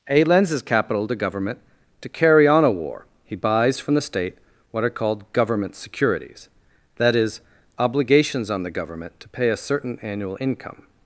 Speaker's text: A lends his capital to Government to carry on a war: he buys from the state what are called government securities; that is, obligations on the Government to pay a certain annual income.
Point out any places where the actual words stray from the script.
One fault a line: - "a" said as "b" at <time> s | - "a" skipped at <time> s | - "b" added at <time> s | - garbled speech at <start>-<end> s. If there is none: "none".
none